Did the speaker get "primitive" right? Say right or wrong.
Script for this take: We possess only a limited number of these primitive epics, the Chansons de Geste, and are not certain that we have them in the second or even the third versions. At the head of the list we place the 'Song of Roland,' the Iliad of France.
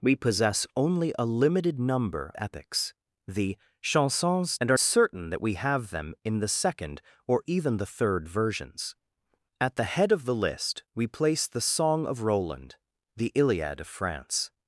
wrong